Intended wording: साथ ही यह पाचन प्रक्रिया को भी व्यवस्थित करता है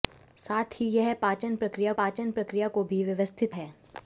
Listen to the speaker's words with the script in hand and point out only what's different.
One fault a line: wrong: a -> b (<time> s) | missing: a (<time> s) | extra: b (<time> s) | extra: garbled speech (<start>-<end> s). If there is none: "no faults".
extra: पाचन प्रक्रिया (2.0 s)
missing: करता (3.5 s)